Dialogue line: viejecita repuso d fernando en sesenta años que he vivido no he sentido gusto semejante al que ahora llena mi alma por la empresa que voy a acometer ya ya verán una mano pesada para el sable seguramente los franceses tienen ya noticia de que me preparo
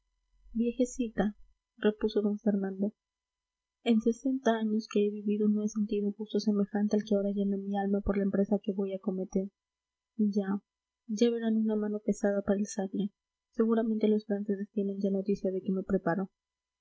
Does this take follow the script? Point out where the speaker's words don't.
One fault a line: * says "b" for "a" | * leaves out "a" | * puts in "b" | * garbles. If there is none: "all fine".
all fine